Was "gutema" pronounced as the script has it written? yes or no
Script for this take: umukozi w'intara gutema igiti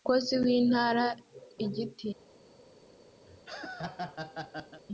no